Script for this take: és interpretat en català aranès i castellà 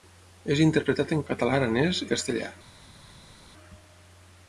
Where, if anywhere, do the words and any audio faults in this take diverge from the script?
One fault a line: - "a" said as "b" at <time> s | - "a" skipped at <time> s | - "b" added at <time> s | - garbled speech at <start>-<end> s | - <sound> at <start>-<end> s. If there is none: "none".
none